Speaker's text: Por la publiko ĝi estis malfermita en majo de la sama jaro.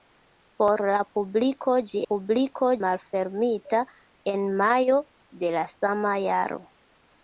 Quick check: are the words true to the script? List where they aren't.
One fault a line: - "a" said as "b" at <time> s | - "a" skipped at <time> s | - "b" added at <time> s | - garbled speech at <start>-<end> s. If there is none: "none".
- "estis" said as "publiko" at 2.1 s